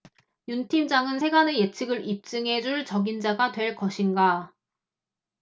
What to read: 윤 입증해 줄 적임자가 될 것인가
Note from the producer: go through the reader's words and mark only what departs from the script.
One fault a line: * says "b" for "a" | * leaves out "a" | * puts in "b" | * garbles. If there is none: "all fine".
* puts in "팀장은 세간의 예측을"